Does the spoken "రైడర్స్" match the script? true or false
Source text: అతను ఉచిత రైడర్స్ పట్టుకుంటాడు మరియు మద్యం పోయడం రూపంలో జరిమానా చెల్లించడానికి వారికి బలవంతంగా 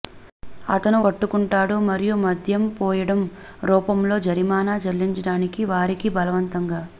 false